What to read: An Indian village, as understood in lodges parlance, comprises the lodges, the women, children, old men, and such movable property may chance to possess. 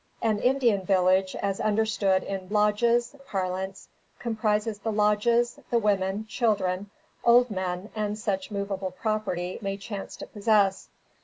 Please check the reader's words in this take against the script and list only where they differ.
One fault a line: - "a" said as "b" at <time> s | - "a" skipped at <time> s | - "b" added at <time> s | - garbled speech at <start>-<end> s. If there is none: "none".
none